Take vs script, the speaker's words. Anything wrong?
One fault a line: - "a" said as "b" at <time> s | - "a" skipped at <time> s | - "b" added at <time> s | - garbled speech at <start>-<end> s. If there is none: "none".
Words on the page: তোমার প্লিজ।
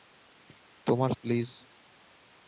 none